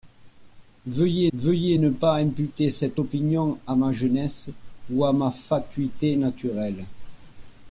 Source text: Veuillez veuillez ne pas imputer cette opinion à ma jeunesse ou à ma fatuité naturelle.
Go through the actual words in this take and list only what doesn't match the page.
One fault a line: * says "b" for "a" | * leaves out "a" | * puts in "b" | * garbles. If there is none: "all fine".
all fine